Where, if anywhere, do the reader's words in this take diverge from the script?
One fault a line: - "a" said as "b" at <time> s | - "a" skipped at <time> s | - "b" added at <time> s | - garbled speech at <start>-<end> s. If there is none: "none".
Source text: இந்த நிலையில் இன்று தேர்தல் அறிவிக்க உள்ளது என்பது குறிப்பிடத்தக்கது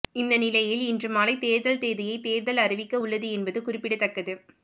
- "மாலை தேர்தல் தேதியை" added at 1.1 s